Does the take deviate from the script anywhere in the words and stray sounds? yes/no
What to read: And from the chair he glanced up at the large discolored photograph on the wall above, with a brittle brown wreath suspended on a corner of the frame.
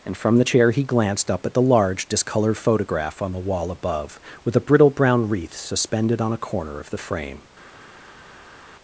no